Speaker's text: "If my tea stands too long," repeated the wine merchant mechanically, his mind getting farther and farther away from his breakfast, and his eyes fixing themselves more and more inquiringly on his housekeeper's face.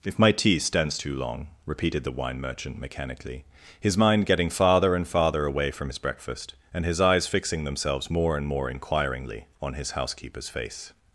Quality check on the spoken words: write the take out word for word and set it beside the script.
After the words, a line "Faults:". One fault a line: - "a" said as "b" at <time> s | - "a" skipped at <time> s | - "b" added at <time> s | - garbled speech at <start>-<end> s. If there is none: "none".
"If my tea stands too long," repeated the wine merchant mechanically, his mind getting farther and farther away from his breakfast, and his eyes fixing themselves more and more inquiringly on his housekeeper's face.
Faults:
none